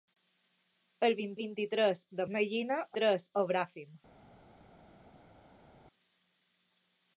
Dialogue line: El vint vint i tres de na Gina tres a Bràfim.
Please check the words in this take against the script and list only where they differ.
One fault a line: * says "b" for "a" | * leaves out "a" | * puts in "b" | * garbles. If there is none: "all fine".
all fine